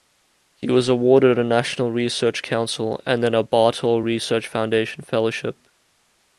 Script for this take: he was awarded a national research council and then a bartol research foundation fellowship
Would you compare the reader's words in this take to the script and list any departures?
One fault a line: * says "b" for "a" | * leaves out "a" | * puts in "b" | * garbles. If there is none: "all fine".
all fine